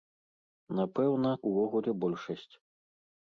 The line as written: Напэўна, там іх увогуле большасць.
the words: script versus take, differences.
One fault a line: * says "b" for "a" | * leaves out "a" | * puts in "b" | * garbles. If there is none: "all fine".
* leaves out "там іх"